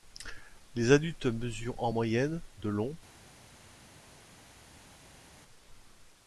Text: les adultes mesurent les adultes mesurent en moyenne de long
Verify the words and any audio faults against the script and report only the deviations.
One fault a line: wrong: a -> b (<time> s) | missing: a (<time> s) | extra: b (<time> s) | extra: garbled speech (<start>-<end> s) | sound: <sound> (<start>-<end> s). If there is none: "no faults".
missing: les adultes mesurent (1.8 s)